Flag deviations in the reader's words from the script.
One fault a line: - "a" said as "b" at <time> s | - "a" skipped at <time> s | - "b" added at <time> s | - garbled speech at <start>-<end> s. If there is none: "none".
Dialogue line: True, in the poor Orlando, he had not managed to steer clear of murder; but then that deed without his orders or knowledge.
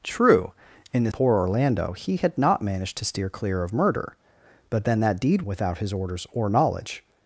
none